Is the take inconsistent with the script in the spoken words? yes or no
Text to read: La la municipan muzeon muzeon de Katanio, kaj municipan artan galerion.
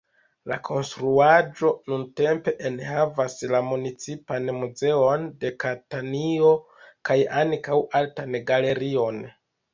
yes